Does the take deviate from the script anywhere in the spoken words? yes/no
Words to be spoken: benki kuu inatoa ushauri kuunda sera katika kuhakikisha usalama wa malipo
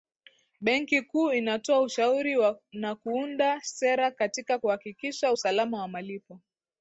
yes